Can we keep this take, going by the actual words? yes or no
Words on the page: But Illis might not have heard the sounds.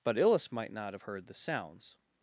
yes